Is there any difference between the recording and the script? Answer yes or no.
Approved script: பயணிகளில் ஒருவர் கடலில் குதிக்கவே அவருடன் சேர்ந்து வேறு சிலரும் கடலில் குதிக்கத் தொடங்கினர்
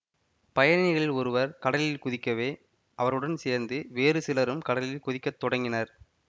no